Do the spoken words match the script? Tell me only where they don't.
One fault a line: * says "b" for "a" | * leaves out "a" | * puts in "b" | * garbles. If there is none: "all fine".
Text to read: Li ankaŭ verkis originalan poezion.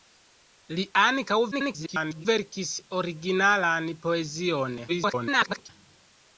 * garbles
* garbles